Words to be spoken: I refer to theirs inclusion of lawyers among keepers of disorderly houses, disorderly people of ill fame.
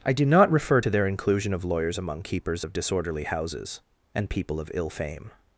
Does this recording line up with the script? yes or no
no